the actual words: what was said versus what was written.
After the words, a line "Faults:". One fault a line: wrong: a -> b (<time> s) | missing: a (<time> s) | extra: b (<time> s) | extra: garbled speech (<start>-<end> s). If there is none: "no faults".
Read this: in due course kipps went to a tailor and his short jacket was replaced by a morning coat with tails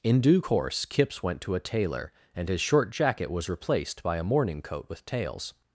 in due course kipps went to a tailor and his short jacket was replaced by a morning coat with tails
Faults:
no faults